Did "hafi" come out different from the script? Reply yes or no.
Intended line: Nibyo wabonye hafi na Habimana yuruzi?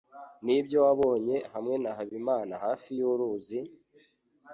yes